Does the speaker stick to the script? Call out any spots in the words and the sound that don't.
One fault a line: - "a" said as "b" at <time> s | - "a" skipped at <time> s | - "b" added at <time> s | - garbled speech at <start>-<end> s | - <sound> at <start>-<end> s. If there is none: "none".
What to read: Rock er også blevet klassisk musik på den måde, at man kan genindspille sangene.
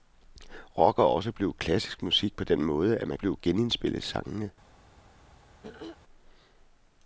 - "kan" said as "blevet" at 3.1 s
- throat clearing at 5.6-6.0 s